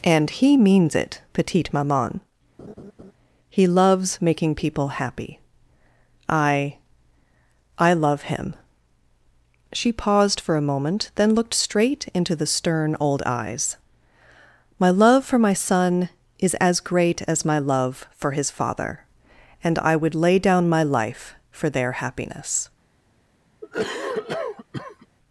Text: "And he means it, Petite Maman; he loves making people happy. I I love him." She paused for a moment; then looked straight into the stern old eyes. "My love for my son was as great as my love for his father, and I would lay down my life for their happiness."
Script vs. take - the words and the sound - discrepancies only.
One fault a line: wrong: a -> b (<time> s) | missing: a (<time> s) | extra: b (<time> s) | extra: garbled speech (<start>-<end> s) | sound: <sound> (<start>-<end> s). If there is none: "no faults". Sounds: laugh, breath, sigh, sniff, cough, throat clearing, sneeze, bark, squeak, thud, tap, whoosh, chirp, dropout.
sound: laugh (2.6-3.1 s)
wrong: was -> is (16.4 s)
sound: cough (23.6-25.1 s)